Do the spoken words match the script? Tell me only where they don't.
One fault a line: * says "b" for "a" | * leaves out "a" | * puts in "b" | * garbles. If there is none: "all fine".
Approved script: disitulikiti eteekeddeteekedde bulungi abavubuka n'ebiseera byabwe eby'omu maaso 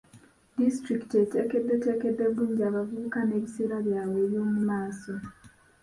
all fine